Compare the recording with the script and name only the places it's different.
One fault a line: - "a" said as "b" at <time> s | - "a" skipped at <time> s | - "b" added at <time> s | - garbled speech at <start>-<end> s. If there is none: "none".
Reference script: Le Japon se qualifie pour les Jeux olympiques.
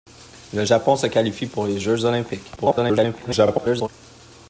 - garbled speech at 2.6-3.9 s